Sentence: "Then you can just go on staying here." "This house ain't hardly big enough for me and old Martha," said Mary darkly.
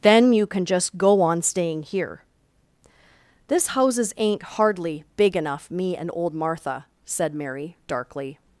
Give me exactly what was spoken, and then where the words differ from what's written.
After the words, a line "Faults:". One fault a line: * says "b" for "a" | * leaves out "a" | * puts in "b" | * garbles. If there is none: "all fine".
"Then you can just go on staying here." "This houses ain't hardly big enough me and old Martha," said Mary darkly.
Faults:
* says "houses" for "house"
* leaves out "for"